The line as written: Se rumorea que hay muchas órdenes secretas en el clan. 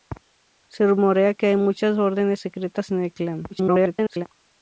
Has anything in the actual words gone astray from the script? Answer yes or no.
yes